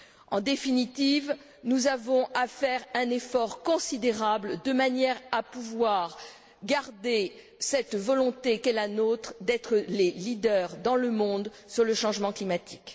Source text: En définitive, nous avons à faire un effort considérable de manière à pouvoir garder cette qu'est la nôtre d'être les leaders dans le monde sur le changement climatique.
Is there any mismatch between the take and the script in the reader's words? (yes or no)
yes